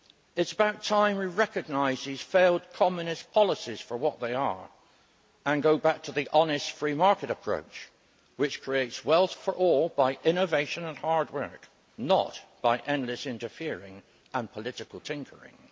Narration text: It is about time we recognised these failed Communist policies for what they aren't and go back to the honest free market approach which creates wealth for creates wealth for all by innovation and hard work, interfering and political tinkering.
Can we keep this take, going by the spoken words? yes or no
no